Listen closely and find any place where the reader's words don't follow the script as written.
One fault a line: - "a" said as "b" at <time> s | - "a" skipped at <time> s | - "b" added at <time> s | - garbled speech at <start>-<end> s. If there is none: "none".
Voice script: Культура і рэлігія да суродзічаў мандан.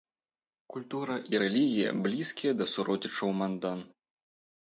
- "блізкія" added at 2.1 s